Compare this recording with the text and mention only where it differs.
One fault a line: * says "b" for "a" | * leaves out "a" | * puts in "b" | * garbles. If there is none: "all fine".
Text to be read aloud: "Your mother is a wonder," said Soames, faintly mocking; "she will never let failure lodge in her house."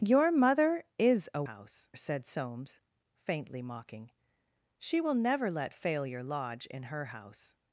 * says "house" for "wonder"